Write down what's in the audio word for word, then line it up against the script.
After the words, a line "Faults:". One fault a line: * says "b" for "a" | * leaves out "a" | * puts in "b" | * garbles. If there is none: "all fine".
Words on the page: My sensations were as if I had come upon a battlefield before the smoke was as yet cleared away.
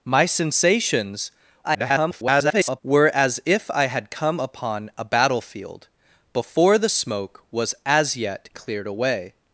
My sensations [garbled] were as if I had come upon a battlefield before the smoke was as yet cleared away.
Faults:
* garbles